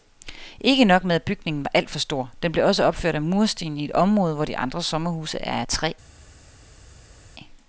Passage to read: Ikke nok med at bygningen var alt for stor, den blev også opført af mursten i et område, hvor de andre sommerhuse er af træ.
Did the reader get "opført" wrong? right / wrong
right